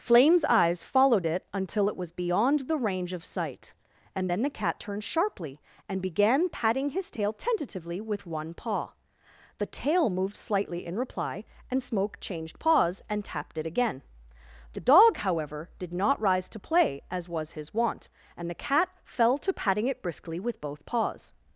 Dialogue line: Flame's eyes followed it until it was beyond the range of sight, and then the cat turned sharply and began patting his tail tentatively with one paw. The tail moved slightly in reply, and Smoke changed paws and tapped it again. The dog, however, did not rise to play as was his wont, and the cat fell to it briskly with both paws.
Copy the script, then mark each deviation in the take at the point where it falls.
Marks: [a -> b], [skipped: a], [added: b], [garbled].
Flame's eyes followed it until it was beyond the range of sight, and then the cat turned sharply and began patting his tail tentatively with one paw. The tail moved slightly in reply, and Smoke changed paws and tapped it again. The dog, however, did not rise to play as was his wont, and the cat fell to [added: patting] it briskly with both paws.